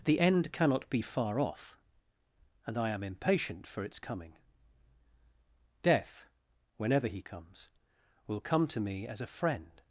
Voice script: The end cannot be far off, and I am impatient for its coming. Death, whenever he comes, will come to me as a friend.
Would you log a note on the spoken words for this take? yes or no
no